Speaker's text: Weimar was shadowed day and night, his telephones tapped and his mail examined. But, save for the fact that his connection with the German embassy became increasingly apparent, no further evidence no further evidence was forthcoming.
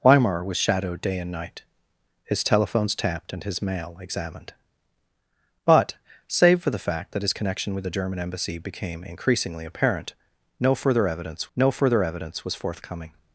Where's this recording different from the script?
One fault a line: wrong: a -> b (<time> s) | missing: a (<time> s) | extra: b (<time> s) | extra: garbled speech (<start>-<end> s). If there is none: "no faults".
no faults